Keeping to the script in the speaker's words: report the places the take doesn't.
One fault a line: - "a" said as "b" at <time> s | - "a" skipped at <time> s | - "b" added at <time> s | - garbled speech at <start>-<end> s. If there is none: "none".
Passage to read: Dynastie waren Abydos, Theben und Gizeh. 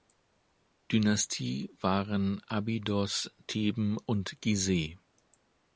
none